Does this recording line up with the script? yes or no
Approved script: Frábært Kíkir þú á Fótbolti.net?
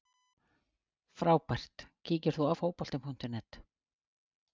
yes